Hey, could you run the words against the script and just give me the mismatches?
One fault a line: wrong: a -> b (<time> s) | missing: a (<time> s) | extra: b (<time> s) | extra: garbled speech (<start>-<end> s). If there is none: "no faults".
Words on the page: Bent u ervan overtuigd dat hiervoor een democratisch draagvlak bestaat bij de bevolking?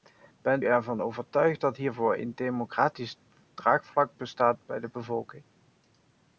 missing: u (0.7 s)